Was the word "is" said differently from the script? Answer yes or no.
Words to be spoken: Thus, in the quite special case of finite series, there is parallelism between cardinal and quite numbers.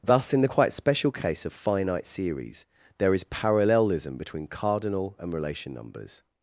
no